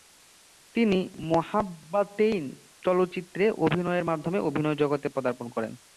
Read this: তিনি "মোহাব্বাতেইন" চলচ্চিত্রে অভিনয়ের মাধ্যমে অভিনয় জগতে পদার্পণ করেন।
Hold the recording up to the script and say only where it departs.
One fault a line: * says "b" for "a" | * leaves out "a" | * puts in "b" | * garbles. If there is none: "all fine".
all fine